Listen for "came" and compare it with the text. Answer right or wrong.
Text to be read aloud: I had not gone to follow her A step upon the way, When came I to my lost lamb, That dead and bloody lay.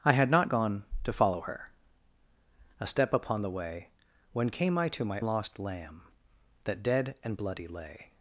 right